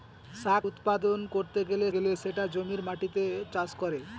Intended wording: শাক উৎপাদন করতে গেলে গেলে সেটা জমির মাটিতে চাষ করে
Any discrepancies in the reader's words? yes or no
no